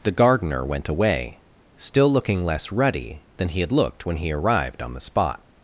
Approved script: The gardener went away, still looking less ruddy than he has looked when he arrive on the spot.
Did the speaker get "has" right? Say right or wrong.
wrong